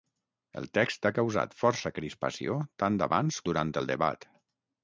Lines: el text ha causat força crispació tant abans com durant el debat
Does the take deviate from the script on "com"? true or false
true